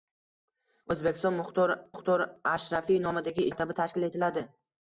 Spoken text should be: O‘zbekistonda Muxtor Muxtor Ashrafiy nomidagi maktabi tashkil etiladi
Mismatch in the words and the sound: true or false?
false